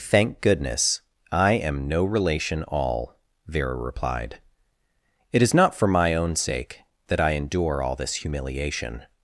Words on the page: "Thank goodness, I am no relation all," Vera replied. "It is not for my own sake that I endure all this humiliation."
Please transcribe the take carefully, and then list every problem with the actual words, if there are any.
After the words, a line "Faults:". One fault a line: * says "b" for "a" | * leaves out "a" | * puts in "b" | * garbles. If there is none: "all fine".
"Thank goodness, I am no relation all," Vera replied. "It is not for my own sake that I endure all this humiliation."
Faults:
all fine